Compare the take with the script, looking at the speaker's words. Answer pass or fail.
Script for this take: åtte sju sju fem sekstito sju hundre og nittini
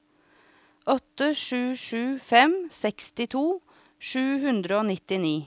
pass